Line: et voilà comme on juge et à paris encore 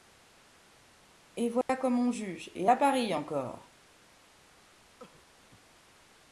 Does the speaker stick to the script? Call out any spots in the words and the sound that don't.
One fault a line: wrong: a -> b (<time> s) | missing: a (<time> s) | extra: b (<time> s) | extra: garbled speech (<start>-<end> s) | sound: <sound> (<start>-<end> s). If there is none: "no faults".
sound: dropout (1.6-1.7 s)
sound: cough (5.0-5.2 s)